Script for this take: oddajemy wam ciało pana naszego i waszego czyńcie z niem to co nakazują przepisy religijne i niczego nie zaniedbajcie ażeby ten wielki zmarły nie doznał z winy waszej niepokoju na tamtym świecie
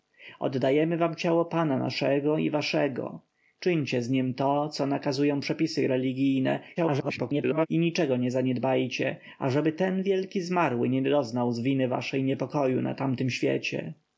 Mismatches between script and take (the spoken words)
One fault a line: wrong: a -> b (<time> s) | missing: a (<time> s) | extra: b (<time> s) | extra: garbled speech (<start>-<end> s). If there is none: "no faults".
extra: garbled speech (6.8-7.7 s)